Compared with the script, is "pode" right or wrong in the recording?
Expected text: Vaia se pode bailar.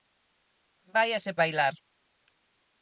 wrong